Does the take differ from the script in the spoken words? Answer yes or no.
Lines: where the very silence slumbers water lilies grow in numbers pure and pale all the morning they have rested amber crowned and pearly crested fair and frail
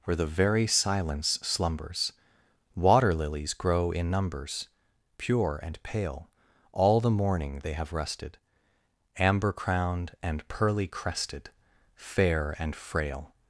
no